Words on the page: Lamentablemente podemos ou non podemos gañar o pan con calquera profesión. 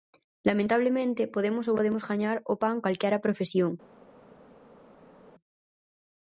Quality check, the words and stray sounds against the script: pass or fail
fail